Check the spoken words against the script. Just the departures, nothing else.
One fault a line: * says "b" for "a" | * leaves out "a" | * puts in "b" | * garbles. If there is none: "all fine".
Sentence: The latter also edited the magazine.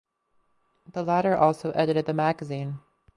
all fine